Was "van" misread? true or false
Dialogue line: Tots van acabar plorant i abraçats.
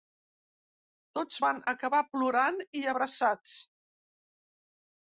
false